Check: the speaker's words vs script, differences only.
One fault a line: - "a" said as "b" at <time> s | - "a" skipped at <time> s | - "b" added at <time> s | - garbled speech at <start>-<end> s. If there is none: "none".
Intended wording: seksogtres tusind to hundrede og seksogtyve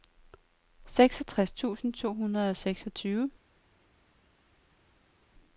none